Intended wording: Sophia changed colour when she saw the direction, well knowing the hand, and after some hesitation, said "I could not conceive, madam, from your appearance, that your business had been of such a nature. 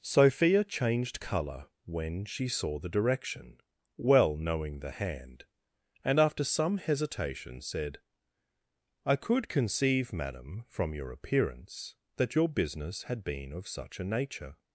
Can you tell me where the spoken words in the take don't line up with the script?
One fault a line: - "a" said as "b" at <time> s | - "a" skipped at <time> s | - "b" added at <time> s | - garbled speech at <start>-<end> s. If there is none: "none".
- "not" skipped at 9.5 s